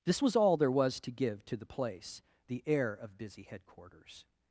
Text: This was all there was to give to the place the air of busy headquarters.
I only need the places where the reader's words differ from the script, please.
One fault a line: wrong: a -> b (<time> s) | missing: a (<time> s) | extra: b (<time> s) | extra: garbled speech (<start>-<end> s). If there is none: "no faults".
no faults